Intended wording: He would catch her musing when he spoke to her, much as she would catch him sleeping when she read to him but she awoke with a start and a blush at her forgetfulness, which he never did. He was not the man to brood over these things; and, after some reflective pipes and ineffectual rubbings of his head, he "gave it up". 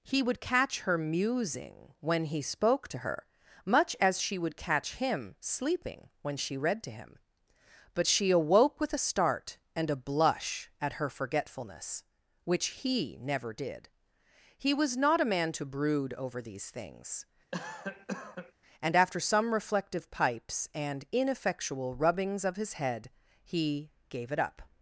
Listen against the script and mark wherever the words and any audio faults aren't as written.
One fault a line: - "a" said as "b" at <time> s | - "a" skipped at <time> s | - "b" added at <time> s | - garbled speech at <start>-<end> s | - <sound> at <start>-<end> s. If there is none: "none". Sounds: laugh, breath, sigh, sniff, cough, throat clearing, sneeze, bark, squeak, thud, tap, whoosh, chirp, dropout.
- "the" said as "a" at 15.2 s
- cough at 17.5-18.5 s